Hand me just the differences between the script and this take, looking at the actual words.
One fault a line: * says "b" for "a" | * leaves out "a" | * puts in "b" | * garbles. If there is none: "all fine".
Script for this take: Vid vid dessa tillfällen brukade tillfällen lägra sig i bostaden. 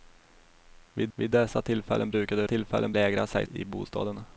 all fine